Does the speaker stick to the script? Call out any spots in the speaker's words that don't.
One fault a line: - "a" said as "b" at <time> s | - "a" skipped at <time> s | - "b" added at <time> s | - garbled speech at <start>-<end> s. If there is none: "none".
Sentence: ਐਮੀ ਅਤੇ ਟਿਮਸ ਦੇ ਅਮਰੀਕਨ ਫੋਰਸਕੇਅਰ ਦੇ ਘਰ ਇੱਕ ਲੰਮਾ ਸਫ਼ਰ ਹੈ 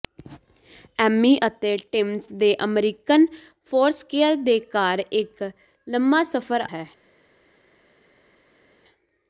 none